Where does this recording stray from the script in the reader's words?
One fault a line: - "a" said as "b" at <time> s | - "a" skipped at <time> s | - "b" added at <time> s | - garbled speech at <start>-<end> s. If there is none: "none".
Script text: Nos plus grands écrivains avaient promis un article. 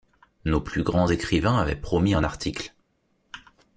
none